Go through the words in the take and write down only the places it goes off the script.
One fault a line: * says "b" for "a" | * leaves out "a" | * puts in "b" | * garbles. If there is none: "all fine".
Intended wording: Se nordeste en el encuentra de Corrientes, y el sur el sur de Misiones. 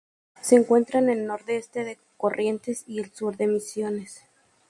* says "encuentra" for "nordeste"
* says "nordeste" for "encuentra"
* leaves out "el sur"